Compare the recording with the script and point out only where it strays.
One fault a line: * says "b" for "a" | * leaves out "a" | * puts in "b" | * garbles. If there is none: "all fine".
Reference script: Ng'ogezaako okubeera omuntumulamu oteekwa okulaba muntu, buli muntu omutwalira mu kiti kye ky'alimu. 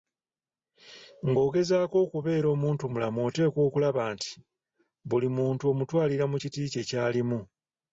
* says "nti" for "muntu"